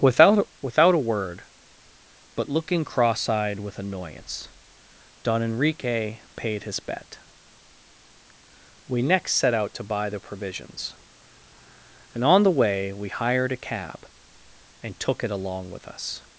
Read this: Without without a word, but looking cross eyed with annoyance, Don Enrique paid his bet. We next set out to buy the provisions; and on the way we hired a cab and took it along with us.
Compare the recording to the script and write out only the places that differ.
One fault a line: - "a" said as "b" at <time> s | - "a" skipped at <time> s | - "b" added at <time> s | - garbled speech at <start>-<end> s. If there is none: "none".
none